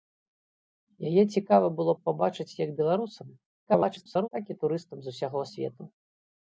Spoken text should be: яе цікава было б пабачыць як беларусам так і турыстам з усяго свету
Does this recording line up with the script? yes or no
no